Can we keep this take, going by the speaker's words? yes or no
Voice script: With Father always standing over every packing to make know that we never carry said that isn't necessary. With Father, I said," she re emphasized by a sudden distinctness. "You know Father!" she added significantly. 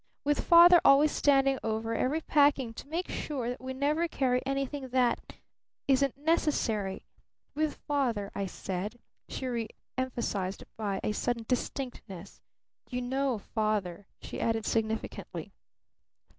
no